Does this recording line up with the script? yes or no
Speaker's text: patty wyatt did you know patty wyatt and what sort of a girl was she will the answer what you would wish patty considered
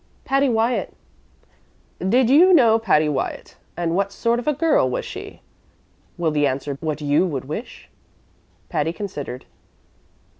yes